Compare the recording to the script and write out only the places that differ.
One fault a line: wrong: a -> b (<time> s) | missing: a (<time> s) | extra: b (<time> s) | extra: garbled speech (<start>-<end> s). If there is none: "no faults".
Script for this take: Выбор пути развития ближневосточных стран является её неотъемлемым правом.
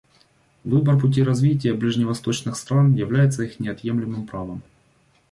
wrong: её -> их (3.4 s)